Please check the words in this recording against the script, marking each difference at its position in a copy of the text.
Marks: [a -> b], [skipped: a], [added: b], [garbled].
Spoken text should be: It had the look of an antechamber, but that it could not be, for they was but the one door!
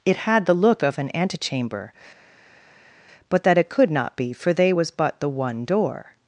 It had the look of an antechamber, but that it could not be, for they was but the one door!